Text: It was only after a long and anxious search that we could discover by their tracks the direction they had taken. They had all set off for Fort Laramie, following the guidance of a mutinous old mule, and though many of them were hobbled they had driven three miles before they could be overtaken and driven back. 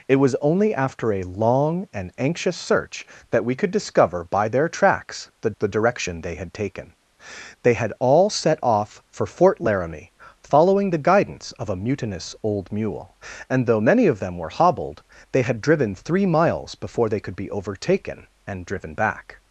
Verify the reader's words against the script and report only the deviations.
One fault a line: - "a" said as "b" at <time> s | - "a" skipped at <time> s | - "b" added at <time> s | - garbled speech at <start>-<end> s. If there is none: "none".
- "the" added at 5.6 s